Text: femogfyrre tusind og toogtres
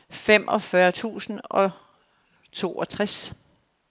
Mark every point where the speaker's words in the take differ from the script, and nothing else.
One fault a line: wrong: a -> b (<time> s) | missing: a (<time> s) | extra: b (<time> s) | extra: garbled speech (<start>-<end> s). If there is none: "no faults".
no faults